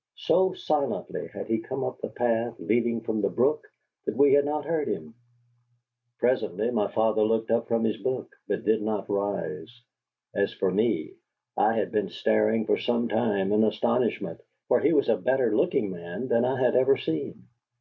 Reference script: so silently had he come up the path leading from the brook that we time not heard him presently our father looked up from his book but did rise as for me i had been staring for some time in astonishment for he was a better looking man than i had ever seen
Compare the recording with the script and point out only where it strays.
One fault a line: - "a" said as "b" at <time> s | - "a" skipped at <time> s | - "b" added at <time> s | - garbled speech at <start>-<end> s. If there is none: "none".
- "time" said as "had" at 4.3 s
- "our" said as "my" at 6.7 s
- "not" added at 8.8 s